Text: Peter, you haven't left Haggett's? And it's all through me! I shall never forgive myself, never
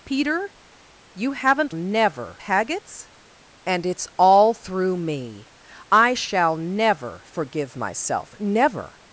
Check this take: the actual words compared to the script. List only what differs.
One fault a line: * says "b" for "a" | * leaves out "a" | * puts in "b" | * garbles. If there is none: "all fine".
* says "never" for "left"